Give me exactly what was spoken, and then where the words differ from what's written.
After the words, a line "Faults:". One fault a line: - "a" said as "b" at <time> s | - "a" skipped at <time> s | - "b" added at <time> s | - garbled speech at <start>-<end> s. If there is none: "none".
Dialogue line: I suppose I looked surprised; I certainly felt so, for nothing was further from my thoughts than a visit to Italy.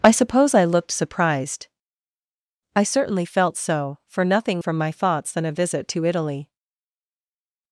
I suppose I looked surprised; I certainly felt so, for nothing from my thoughts than a visit to Italy.
Faults:
- "was further" skipped at 4.6 s